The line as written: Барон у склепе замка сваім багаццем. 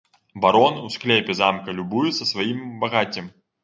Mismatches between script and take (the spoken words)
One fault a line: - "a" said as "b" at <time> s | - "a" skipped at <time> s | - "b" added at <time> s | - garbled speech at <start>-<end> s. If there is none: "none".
- "любуецца" added at 1.8 s